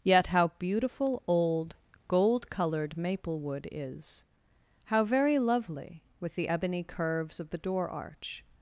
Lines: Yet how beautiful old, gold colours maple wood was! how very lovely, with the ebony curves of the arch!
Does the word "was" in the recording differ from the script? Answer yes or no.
yes